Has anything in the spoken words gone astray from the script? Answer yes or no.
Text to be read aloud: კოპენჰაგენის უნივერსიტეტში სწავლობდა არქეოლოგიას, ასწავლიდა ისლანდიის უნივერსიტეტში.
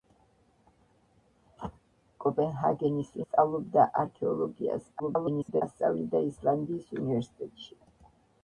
yes